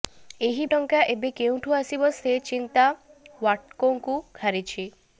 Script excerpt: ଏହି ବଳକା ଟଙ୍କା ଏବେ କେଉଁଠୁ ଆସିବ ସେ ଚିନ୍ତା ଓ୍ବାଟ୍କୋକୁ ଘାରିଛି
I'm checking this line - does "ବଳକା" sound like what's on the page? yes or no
no